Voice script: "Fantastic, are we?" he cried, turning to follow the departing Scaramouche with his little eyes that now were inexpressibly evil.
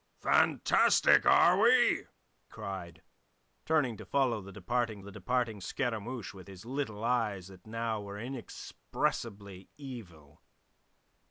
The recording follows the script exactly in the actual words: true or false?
false